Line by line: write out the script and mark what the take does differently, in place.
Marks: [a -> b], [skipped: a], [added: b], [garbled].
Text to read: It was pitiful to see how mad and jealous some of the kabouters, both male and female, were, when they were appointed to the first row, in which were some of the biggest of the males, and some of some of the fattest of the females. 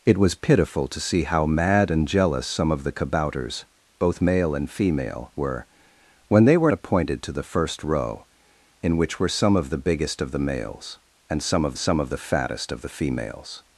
It was pitiful to see how mad and jealous some of the kabouters, both male and female, were, when they were appointed to the first row, in which were some of the biggest of the males, and some of some of the fattest of the females.